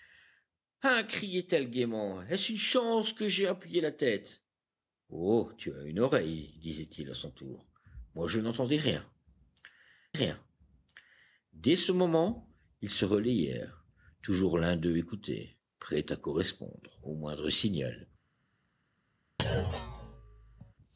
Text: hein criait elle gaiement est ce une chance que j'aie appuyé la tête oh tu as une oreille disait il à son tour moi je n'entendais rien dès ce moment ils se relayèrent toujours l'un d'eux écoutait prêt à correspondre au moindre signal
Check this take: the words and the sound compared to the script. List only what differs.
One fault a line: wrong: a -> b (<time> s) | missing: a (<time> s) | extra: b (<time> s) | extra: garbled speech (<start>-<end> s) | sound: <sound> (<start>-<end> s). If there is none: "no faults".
extra: rien (10.1 s)
sound: thud (19.4-20.7 s)